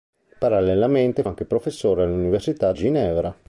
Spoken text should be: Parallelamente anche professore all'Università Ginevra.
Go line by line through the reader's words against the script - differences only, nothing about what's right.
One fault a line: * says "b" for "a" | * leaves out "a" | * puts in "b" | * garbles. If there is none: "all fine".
all fine